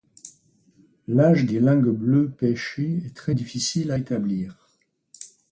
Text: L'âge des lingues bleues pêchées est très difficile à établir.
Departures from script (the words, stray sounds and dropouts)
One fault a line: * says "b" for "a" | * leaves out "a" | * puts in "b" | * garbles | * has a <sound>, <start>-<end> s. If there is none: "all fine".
all fine